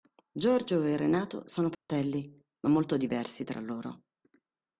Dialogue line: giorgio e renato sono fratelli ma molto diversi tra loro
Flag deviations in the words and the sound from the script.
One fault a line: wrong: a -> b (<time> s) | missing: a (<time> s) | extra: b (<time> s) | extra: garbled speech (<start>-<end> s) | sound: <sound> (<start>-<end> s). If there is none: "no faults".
sound: dropout (1.7-1.9 s)